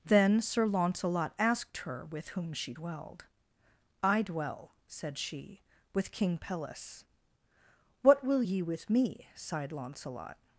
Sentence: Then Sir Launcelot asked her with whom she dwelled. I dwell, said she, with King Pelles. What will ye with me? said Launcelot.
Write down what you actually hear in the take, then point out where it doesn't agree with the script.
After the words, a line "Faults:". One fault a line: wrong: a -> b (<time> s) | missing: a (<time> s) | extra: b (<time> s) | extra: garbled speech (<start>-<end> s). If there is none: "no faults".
Then Sir Launcelot asked her with whom she dwelled. I dwell, said she, with King Pelles. What will ye with me? sighed Launcelot.
Faults:
wrong: said -> sighed (9.3 s)